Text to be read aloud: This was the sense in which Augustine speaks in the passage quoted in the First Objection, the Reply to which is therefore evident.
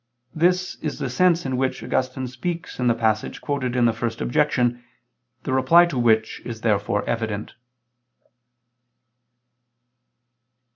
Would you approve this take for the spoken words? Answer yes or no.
no